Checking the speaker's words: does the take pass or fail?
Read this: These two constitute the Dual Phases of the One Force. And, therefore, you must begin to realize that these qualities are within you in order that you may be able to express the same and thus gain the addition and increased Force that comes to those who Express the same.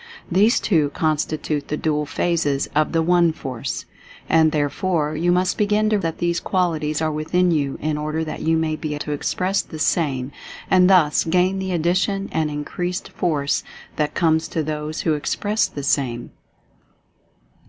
fail